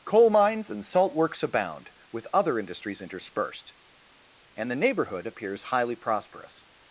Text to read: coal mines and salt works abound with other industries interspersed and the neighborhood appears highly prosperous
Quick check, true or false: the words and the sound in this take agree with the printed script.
true